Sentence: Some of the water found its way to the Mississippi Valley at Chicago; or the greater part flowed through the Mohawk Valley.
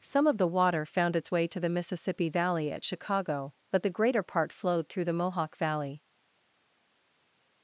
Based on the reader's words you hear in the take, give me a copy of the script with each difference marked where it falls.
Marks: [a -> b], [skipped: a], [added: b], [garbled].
Some of the water found its way to the Mississippi Valley at Chicago; [or -> but] the greater part flowed through the Mohawk Valley.